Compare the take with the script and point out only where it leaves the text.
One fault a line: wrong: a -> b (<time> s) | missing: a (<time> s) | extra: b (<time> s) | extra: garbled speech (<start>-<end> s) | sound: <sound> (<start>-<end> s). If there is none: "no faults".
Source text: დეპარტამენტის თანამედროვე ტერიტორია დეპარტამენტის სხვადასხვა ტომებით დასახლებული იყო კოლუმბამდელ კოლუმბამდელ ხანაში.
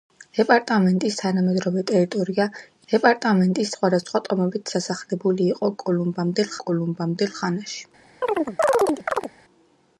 sound: chirp (8.2-9.3 s)